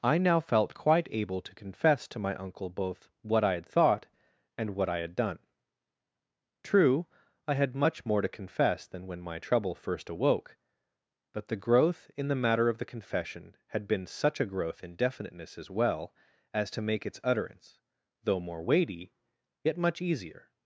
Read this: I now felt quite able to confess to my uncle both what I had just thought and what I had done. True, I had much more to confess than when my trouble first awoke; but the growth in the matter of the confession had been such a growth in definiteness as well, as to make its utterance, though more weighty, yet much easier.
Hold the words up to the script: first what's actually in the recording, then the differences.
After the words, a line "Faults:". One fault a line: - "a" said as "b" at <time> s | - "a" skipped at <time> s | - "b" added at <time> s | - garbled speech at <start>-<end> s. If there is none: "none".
I now felt quite able to confess to my uncle both what I had thought and what I had done. True, I had much more to confess than when my trouble first awoke; but the growth in the matter of the confession had been such a growth in definiteness as well, as to make its utterance, though more weighty, yet much easier.
Faults:
- "just" skipped at 3.6 s